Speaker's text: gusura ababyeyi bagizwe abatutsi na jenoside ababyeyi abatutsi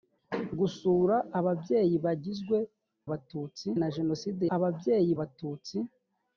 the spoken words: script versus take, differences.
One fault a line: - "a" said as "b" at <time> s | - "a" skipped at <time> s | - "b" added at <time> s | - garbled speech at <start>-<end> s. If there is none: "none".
none